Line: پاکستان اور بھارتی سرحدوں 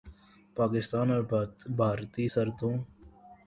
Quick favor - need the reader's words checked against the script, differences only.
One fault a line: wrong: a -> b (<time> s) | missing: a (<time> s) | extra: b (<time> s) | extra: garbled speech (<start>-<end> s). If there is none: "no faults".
no faults